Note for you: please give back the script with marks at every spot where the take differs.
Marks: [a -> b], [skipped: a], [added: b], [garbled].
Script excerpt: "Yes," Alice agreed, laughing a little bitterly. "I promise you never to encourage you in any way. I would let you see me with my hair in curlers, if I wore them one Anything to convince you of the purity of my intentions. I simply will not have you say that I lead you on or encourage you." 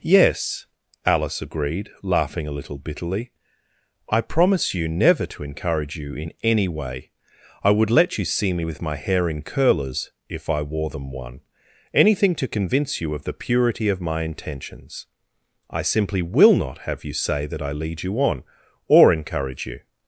"Yes," Alice agreed, laughing a little bitterly. "I promise you never to encourage you in any way. I would let you see me with my hair in curlers, if I wore them one Anything to convince you of the purity of my intentions. I simply will not have you say that I lead you on or encourage you."